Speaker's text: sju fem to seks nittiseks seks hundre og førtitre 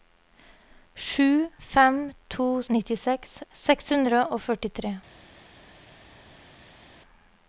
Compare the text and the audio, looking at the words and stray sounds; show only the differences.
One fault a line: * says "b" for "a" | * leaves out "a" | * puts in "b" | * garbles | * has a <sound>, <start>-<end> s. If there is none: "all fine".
* leaves out "seks"